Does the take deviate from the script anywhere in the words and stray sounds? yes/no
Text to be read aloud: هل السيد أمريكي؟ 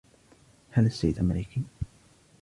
no